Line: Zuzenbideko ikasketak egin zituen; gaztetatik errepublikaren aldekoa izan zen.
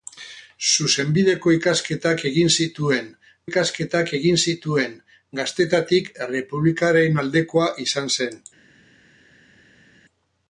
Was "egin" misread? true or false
false